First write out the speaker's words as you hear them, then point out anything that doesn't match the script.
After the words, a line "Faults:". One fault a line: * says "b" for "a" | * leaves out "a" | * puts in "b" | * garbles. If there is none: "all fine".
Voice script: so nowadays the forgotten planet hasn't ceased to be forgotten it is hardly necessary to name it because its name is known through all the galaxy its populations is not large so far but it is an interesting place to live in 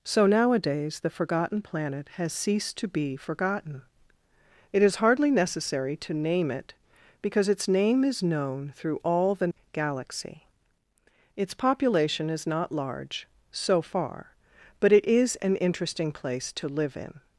so nowadays the forgotten planet has ceased to be forgotten it is hardly necessary to name it because its name is known through all the galaxy its population is not large so far but it is an interesting place to live in
Faults:
* says "has" for "hasn't"
* says "population" for "populations"